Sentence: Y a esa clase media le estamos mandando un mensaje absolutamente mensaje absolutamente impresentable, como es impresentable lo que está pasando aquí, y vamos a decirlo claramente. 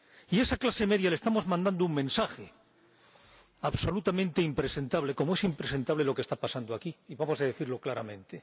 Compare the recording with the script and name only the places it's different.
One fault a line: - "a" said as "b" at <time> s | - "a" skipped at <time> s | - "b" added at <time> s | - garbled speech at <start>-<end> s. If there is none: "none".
- "mensaje absolutamente" skipped at 4.4 s